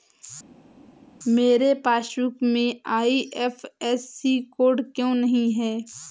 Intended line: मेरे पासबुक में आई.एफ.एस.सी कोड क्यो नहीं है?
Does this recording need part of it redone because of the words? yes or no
no